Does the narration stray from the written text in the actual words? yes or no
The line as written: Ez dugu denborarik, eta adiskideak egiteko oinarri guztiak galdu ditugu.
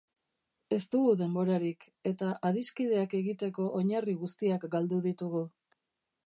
no